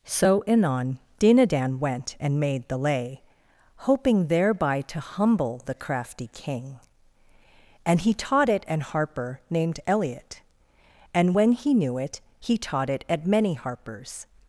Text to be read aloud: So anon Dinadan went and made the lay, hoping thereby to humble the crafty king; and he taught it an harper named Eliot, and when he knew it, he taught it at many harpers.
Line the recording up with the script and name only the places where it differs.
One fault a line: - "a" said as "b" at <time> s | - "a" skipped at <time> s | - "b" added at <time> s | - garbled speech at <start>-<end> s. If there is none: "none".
none